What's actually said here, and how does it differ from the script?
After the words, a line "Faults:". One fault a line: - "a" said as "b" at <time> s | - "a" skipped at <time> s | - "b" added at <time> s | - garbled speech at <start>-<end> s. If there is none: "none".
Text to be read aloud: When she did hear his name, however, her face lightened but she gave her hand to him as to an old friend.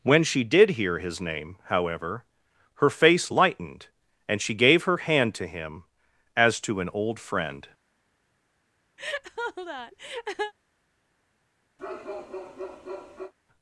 When she did hear his name, however, her face lightened and she gave her hand to him as to an old friend.
Faults:
- "but" said as "and" at 4.3 s